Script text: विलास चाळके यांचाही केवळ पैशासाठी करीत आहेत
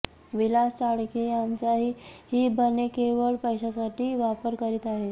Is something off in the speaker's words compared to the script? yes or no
yes